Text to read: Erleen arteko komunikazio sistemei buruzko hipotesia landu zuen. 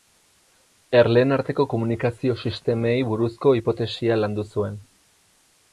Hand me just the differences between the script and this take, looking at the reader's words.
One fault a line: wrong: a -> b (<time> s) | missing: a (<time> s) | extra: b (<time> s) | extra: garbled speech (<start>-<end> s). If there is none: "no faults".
no faults